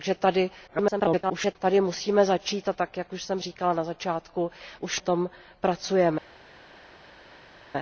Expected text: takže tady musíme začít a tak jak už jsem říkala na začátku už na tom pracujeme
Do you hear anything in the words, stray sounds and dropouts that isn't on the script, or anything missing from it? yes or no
yes